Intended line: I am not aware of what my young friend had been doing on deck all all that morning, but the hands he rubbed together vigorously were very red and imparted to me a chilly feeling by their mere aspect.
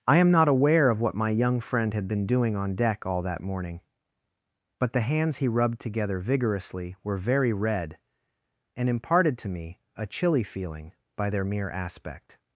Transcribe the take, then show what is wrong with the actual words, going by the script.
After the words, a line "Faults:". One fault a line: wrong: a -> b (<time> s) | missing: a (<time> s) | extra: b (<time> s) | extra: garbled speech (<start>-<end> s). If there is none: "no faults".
I am not aware of what my young friend had been doing on deck all that morning, but the hands he rubbed together vigorously were very red and imparted to me a chilly feeling by their mere aspect.
Faults:
missing: all (3.2 s)